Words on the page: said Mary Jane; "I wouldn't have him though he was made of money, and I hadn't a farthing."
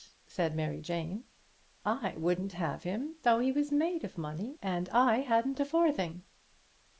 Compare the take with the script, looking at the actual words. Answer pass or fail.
pass